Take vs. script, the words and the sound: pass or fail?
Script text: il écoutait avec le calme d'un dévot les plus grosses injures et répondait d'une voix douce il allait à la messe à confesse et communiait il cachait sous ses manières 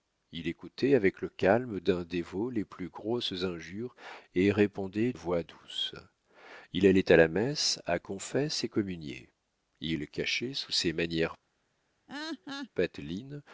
fail